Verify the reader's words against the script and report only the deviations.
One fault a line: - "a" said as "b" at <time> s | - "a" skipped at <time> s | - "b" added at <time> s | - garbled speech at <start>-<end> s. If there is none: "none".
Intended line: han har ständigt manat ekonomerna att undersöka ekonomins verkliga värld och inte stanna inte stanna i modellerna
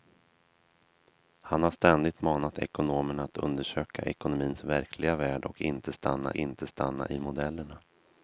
none